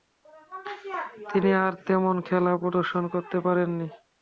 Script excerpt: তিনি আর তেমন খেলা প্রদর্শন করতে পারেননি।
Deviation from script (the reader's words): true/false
false